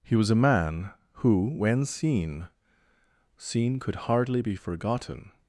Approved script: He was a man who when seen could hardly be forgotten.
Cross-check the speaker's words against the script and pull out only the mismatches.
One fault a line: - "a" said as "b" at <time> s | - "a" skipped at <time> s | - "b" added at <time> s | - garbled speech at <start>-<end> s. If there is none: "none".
- "seen" added at 3.4 s